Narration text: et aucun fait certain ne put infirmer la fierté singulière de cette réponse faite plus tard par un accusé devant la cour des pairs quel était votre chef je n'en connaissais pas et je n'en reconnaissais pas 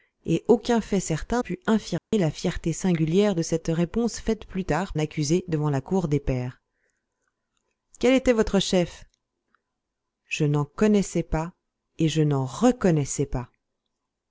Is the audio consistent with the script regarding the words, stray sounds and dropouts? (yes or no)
no